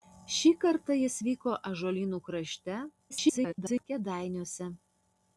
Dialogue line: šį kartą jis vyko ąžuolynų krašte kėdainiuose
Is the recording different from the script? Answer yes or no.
yes